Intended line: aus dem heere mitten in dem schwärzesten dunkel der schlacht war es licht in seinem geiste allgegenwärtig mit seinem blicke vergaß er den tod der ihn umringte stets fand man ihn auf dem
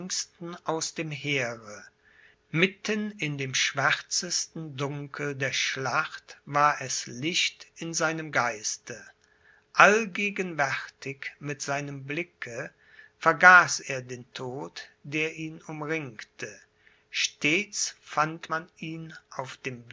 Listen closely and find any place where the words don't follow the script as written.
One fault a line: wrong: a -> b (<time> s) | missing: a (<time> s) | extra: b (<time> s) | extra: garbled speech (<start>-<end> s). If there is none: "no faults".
no faults